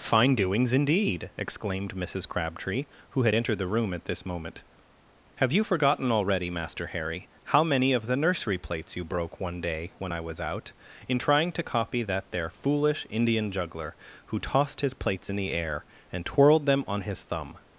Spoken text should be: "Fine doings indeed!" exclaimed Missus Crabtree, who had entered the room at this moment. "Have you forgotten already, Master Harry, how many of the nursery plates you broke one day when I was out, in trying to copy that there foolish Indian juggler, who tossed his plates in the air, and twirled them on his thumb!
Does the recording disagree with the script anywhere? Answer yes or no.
no